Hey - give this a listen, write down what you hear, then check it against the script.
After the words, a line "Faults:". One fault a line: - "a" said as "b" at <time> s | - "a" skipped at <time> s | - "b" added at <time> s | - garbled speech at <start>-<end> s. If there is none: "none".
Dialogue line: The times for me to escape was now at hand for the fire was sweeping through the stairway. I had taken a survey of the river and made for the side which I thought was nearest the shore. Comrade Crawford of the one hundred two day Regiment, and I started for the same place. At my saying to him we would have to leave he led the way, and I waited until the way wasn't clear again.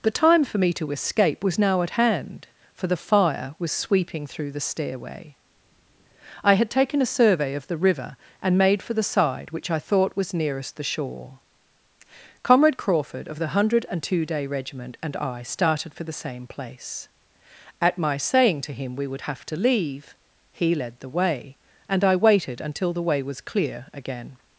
The time for me to escape was now at hand for the fire was sweeping through the stairway. I had taken a survey of the river and made for the side which I thought was nearest the shore. Comrade Crawford of the one hundred two day Regiment, and I started for the same place. At my saying to him we would have to leave he led the way, and I waited until the way was clear again.
Faults:
- "times" said as "time" at 0.1 s
- "wasn't" said as "was" at 23.2 s